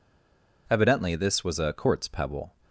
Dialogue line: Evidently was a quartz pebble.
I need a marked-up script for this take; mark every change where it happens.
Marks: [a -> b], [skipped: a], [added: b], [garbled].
Evidently [added: this] was a quartz pebble.